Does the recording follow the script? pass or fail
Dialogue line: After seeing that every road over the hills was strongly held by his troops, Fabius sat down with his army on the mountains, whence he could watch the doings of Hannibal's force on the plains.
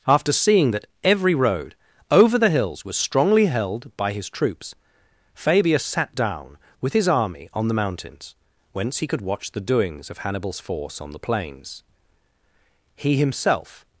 fail